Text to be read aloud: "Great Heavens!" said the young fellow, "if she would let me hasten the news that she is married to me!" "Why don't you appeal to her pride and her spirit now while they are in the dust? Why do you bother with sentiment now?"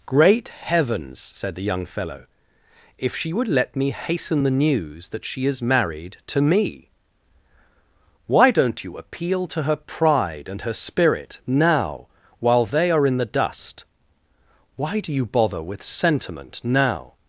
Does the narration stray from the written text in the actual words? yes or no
no